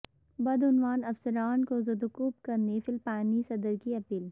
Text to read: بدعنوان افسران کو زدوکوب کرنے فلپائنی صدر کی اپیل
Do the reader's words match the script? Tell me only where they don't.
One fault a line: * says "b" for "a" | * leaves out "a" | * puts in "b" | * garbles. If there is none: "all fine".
all fine